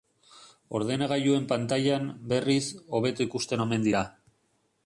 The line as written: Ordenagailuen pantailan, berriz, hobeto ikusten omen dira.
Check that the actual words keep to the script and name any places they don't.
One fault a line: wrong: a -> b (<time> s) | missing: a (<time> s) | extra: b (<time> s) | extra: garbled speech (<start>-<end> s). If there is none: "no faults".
no faults